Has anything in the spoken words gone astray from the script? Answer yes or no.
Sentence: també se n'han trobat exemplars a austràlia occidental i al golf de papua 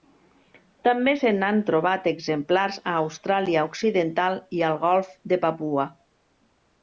no